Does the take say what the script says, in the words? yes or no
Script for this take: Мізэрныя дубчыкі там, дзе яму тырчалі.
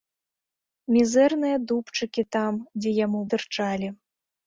yes